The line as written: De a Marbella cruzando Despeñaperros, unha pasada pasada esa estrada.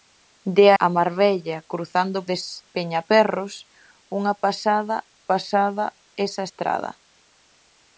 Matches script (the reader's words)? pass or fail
pass